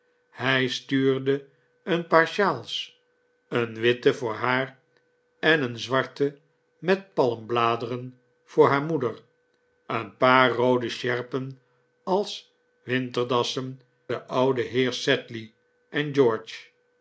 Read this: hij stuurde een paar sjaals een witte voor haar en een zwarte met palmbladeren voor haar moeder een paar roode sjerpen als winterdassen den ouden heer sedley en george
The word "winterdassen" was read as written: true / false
true